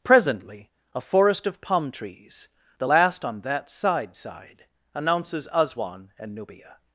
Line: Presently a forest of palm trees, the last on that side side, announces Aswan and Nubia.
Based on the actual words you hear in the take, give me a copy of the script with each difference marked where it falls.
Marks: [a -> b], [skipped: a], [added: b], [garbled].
Presently a forest of palm trees, the last on that side side, announces Aswan and Nubia.